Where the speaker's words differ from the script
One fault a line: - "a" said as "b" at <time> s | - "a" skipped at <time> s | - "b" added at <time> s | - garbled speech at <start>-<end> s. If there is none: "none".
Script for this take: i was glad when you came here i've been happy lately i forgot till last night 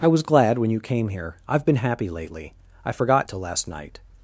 none